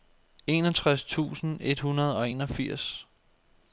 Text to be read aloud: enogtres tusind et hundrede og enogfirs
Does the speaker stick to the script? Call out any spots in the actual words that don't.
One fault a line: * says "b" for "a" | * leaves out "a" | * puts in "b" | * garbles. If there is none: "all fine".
all fine